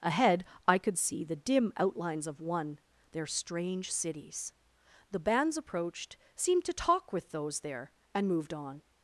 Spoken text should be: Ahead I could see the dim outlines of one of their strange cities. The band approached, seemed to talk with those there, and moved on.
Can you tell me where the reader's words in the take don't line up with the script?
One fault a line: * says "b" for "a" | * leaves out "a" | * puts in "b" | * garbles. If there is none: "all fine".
* leaves out "of"
* says "bands" for "band"